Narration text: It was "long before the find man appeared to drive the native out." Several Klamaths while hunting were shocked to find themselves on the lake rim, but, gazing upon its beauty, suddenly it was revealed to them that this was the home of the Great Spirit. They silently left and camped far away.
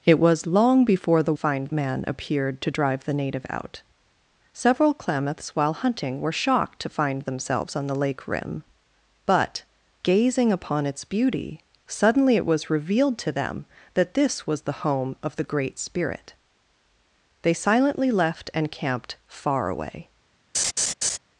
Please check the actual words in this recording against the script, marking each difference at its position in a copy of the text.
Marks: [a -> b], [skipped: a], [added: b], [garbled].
It was "long before the find man appeared to drive the native out." Several Klamaths while hunting were shocked to find themselves on the lake rim, but, gazing upon its beauty, suddenly it was revealed to them that this was the home of the Great Spirit. They silently left and camped far away.